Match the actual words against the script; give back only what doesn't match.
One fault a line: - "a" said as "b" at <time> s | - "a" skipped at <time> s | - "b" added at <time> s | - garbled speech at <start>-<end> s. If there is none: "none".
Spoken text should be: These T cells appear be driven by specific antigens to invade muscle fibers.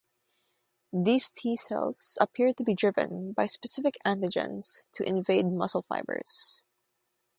- "to" added at 2.5 s